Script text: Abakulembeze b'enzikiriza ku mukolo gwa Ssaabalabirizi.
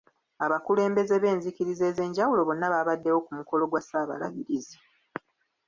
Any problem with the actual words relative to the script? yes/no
yes